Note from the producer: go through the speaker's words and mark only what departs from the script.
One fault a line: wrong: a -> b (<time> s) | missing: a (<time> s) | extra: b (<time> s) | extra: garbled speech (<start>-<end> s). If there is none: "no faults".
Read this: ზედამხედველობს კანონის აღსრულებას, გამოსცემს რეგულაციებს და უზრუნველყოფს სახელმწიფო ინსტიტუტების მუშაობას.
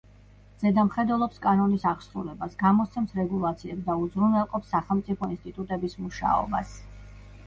no faults